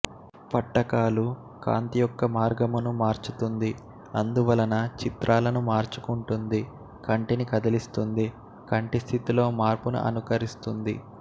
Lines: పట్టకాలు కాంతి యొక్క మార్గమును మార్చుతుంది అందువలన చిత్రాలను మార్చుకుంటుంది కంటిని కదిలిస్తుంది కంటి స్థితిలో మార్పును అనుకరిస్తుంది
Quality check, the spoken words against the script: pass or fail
pass